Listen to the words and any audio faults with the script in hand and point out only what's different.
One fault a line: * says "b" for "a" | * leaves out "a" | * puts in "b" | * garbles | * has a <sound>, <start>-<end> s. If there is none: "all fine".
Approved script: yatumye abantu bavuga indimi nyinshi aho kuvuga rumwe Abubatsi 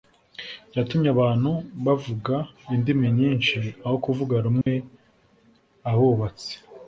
* has a dropout, 4.6-4.7 s